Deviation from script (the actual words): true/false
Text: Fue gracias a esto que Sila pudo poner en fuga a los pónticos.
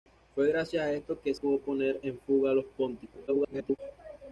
true